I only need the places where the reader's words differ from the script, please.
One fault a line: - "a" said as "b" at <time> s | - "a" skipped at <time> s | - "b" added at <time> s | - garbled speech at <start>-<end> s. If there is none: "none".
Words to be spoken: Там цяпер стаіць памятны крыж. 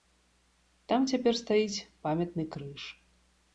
none